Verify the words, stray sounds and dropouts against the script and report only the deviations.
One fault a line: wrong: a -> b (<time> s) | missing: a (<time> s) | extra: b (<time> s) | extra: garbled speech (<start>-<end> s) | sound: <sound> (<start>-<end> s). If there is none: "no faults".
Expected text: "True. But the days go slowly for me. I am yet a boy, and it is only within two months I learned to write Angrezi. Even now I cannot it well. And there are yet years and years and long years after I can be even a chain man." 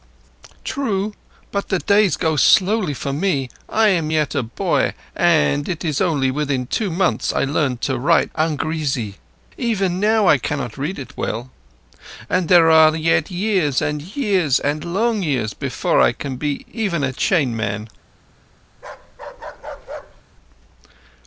extra: read (10.8 s)
wrong: after -> before (15.5 s)
sound: bark (18.7-20.2 s)